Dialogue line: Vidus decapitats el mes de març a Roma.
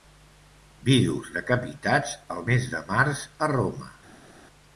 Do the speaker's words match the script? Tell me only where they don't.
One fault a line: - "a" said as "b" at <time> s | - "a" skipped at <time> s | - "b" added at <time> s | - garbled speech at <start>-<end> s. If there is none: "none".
none